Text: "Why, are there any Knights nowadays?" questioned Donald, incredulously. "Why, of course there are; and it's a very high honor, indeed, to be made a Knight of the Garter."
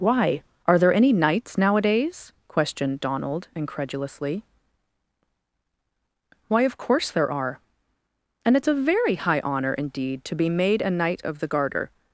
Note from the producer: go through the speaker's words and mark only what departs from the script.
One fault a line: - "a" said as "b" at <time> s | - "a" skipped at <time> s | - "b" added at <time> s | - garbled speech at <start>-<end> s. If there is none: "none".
none